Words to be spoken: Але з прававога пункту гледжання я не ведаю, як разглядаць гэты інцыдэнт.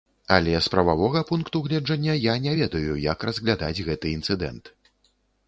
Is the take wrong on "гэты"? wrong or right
right